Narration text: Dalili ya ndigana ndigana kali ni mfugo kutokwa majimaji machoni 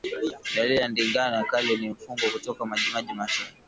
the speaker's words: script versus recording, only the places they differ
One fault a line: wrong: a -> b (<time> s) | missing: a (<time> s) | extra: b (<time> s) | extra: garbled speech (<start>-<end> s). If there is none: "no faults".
missing: ndigana (1.4 s)